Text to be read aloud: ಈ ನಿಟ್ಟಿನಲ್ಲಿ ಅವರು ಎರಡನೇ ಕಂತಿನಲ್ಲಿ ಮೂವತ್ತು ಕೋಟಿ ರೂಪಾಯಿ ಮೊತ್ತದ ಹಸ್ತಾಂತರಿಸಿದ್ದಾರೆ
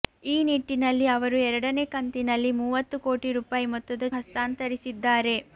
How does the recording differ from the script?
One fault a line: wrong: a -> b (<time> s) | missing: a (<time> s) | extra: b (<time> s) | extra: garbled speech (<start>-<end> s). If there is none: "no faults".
no faults